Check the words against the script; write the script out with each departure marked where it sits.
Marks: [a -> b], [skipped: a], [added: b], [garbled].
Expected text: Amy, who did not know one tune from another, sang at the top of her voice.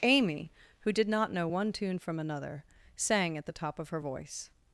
Amy, who did not know one tune from another, sang at the top of her voice.